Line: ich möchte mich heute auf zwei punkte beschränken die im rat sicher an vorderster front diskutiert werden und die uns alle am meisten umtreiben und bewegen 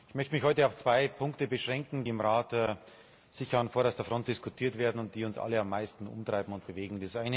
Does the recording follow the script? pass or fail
fail